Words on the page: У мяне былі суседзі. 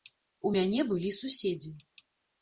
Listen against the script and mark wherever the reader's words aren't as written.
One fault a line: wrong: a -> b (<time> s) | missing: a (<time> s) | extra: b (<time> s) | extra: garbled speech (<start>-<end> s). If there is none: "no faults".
no faults